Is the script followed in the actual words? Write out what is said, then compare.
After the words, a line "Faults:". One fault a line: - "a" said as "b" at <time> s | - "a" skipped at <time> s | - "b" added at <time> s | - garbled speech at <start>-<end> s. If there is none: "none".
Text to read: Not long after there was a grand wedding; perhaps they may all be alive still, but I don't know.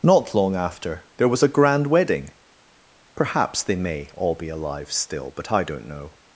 Not long after there was a grand wedding; perhaps they may all be alive still, but I don't know.
Faults:
none